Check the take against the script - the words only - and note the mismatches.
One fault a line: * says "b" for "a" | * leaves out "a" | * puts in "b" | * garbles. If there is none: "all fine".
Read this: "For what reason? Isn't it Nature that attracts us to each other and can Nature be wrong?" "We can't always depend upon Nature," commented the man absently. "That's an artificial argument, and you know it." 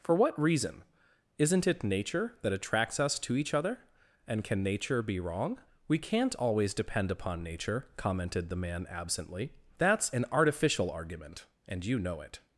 all fine